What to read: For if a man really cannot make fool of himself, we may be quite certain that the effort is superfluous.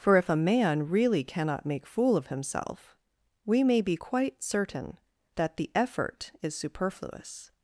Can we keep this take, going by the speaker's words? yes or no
yes